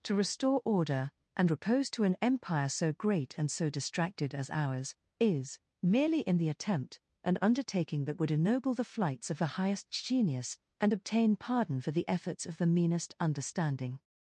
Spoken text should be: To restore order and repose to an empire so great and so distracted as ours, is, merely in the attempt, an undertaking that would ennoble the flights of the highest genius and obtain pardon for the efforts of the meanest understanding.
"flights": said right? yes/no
yes